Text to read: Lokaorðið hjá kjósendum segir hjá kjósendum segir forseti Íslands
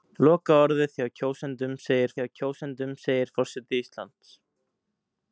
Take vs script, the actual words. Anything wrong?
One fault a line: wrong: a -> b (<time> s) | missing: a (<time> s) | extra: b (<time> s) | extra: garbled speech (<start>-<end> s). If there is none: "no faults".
no faults